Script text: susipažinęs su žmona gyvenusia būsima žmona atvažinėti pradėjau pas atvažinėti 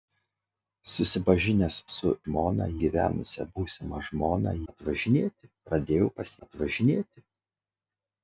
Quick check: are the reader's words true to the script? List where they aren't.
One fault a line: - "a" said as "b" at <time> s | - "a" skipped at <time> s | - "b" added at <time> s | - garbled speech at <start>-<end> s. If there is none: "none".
none